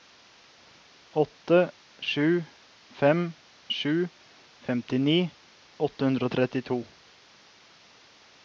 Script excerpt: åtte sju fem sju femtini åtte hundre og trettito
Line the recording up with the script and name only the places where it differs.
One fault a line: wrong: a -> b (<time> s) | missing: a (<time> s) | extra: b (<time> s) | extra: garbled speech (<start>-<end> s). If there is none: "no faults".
no faults